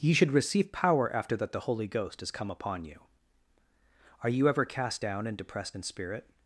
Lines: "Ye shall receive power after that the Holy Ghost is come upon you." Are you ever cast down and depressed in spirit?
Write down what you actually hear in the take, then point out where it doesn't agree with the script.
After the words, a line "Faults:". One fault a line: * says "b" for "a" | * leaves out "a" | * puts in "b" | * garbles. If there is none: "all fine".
"Ye should receive power after that the Holy Ghost is come upon you." Are you ever cast down and depressed in spirit?
Faults:
* says "should" for "shall"